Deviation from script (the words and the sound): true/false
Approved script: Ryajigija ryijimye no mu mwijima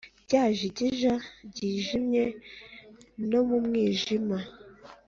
false